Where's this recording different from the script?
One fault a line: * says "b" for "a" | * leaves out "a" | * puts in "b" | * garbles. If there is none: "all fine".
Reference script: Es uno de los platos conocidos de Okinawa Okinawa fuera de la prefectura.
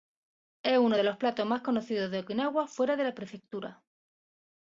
* puts in "más"
* leaves out "Okinawa"